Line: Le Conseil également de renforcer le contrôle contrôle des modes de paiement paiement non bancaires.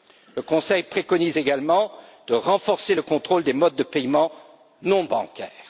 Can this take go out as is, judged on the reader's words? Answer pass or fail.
fail